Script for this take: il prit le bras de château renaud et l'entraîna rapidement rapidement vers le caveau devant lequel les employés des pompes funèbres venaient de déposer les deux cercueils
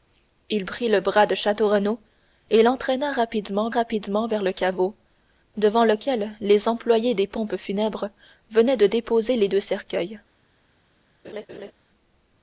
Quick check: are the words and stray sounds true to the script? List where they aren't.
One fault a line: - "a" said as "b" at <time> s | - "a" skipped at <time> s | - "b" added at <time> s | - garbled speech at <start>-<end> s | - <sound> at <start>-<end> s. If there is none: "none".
- laugh at 11.2-11.7 s